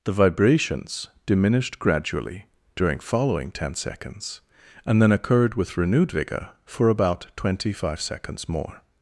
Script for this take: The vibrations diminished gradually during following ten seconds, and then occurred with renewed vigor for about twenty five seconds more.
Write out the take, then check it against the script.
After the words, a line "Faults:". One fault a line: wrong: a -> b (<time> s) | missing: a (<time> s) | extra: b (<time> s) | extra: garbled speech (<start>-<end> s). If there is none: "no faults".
The vibrations diminished gradually during following ten seconds, and then occurred with renewed vigor for about twenty five seconds more.
Faults:
no faults